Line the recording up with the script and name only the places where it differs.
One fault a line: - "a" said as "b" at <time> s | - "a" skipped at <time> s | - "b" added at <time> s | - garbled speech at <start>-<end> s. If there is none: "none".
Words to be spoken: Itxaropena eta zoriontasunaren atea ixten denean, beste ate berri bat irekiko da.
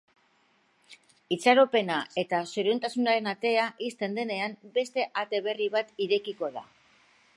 none